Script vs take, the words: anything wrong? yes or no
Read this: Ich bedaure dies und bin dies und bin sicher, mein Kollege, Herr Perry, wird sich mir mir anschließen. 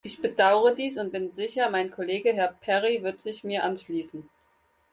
yes